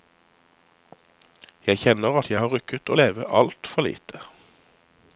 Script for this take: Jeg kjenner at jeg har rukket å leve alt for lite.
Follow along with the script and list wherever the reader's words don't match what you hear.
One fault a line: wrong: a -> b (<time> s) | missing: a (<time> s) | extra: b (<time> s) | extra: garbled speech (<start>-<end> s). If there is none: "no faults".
no faults